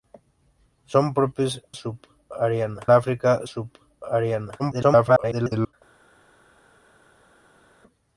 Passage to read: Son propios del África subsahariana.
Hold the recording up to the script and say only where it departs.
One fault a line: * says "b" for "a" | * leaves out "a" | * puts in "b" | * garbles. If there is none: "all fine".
* says "subsahariana" for "del"
* garbles